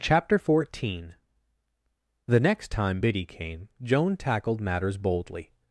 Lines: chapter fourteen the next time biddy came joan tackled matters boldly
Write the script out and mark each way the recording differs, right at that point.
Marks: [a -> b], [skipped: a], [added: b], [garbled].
chapter fourteen the next time biddy came joan tackled matters boldly